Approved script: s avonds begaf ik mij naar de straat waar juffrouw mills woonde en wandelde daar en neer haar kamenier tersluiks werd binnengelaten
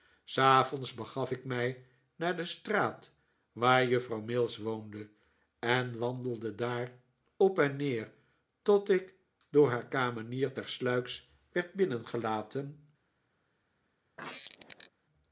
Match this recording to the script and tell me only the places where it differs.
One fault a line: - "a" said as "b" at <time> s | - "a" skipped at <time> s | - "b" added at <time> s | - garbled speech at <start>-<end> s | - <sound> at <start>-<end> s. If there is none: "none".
- "op" added at 7.4 s
- "tot ik door" added at 8.6 s
- squeak at 14.2-14.9 s